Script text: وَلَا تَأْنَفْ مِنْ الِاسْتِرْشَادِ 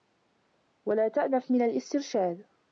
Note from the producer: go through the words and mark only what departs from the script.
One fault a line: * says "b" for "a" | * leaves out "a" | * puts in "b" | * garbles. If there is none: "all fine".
all fine